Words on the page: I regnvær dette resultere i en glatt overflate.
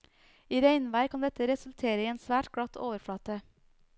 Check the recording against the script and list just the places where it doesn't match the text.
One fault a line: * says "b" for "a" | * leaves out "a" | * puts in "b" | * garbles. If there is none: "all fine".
* puts in "kan"
* puts in "svært"